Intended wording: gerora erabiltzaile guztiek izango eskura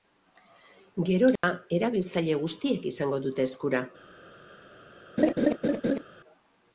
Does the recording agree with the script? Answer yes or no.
no